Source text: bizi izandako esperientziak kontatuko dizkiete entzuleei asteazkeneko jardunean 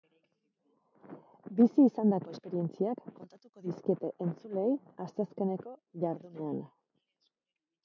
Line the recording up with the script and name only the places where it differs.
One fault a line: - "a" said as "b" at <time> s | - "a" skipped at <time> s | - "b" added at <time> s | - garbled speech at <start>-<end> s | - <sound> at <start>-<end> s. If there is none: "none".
none